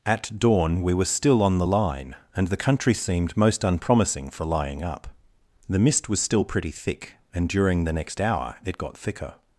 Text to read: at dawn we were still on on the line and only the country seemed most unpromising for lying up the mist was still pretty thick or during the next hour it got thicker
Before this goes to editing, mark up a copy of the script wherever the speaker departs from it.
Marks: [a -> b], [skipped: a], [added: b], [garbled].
at dawn we were still on [skipped: on] the line and [skipped: only] the country seemed most unpromising for lying up the mist was still pretty thick [or -> and] during the next hour it got thicker